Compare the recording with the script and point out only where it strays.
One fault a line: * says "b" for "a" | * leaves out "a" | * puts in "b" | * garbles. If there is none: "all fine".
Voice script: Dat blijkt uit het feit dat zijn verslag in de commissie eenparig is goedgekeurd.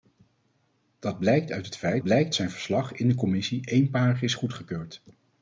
* says "blijkt" for "dat"